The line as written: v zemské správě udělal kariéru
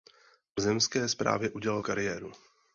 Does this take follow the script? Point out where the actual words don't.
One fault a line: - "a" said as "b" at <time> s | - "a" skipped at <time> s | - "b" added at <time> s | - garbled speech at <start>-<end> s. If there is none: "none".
none